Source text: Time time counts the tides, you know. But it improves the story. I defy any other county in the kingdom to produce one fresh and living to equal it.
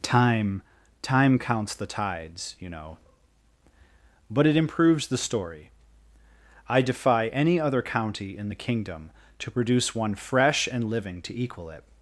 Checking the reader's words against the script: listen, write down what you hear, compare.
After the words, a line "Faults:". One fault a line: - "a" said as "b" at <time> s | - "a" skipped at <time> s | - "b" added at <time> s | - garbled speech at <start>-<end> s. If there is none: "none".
Time time counts the tides, you know. But it improves the story. I defy any other county in the kingdom to produce one fresh and living to equal it.
Faults:
none